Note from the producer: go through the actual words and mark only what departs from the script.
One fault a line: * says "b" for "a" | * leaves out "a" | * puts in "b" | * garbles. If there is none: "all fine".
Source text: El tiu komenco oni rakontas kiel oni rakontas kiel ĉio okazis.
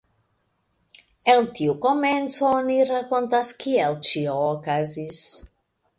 * leaves out "oni rakontas kiel"